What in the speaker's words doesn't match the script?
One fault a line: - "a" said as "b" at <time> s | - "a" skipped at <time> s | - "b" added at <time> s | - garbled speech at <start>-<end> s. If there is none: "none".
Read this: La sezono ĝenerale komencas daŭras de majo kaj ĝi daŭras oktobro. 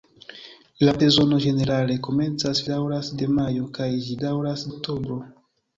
none